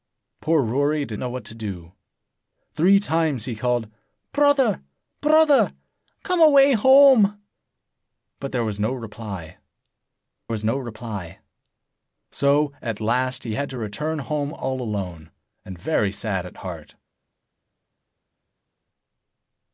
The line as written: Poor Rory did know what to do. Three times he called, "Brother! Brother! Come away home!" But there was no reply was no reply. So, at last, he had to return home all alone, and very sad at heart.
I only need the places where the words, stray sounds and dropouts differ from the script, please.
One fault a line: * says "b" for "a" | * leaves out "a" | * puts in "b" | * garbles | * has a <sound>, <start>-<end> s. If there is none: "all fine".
all fine